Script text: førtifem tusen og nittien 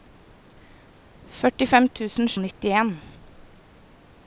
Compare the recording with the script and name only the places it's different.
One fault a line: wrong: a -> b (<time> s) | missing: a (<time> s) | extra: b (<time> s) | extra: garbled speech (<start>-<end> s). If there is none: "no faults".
no faults